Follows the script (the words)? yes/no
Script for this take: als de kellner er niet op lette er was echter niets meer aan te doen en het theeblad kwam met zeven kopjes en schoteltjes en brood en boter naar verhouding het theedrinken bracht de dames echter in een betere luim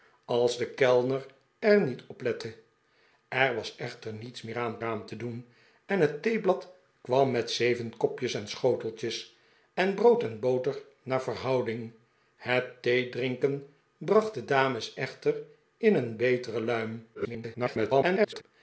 no